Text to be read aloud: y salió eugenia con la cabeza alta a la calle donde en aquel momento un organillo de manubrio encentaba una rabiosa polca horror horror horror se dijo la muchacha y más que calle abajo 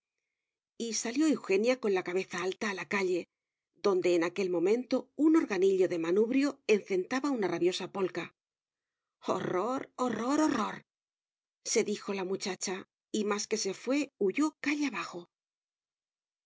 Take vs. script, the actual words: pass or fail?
fail